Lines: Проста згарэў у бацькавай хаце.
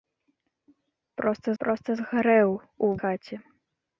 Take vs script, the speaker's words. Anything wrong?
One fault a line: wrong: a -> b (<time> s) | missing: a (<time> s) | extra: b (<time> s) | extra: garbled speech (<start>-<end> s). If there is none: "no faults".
extra: проста (1.6 s)
missing: бацькавай (2.9 s)